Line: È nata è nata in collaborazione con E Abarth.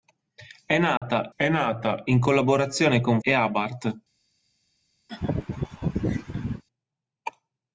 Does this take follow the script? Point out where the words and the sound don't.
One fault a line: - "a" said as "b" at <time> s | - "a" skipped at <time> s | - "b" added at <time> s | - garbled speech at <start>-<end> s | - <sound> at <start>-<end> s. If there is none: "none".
- dropout at 1.0-1.0 s
- laugh at 5.1-6.6 s